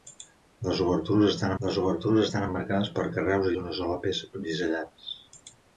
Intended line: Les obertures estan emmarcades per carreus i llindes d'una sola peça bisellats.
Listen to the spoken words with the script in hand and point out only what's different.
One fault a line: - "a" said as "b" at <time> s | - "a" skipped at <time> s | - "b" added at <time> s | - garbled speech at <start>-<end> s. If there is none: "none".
- "les obertures estan" added at 1.6 s
- "llindes" skipped at 3.5 s